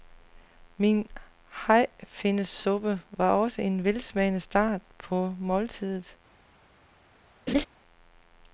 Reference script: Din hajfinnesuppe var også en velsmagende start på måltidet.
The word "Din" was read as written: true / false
false